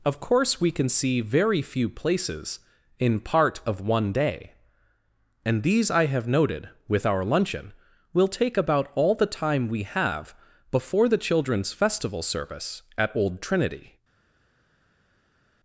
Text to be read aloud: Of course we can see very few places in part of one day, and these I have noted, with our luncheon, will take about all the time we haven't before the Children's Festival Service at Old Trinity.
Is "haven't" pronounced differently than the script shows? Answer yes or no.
yes